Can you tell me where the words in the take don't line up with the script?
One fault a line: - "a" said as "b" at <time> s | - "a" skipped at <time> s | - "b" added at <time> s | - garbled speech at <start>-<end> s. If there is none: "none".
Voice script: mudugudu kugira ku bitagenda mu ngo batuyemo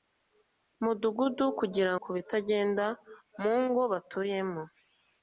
none